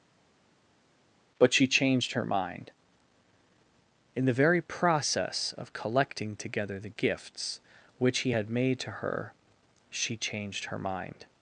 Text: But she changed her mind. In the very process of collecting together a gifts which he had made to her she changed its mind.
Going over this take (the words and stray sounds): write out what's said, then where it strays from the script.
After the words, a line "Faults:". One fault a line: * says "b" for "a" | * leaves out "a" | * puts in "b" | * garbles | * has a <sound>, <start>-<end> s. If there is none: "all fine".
But she changed her mind. In the very process of collecting together the gifts which he had made to her she changed her mind.
Faults:
* says "the" for "a"
* says "her" for "its"